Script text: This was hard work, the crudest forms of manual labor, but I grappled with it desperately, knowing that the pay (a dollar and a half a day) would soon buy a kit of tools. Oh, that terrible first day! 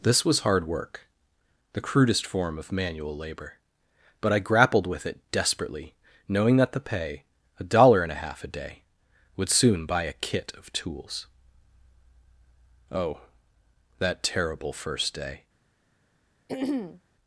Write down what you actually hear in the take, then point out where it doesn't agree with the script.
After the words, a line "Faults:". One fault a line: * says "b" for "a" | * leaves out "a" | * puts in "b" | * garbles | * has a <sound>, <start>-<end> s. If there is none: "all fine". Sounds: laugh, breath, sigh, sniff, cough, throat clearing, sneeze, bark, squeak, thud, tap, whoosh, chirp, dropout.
This was hard work, the crudest form of manual labor, but I grappled with it desperately, knowing that the pay (a dollar and a half a day) would soon buy a kit of tools. Oh, that terrible first day!
Faults:
* says "form" for "forms"
* has a throat clearing, 16.5-17.0 s